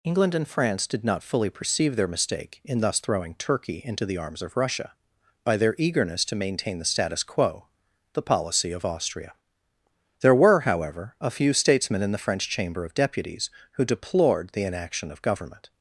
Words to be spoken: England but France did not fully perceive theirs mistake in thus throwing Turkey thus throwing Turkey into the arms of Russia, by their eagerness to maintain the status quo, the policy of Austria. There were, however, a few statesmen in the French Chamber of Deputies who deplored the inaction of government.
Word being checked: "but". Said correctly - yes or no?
no